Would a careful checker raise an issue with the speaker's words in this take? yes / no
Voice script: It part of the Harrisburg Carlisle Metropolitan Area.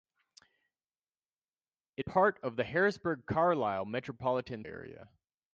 no